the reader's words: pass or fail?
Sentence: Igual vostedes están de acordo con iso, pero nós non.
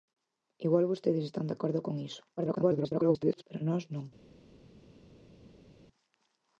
fail